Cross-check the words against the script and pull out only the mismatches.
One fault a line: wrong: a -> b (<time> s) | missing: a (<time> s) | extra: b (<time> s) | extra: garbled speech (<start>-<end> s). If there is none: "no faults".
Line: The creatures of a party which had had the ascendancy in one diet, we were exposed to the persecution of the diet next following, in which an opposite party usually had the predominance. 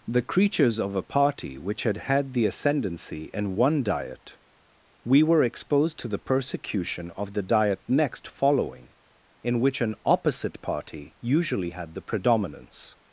no faults